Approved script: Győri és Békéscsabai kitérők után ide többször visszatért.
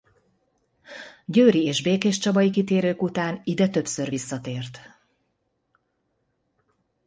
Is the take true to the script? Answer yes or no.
yes